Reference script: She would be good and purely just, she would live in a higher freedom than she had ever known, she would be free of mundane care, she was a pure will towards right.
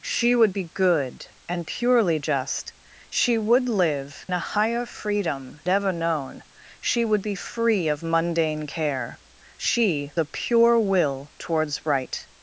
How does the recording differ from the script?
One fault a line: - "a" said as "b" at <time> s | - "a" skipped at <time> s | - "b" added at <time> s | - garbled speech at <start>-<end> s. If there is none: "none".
- "in" skipped at 4.2 s
- "than she had" skipped at 5.6 s
- "was" skipped at 10.1 s